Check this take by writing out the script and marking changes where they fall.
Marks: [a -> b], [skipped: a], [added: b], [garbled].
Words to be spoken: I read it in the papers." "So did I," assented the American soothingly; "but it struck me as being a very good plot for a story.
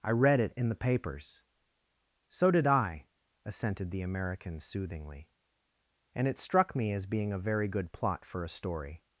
I read it in the papers." "So did I," assented the American soothingly; ["but -> and] it struck me as being a very good plot for a story.